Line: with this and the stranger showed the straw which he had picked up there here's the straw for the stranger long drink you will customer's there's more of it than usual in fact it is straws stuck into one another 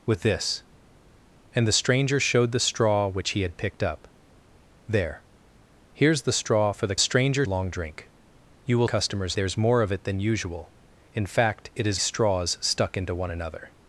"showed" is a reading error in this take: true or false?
false